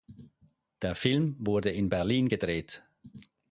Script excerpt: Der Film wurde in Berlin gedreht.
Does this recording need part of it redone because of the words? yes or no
no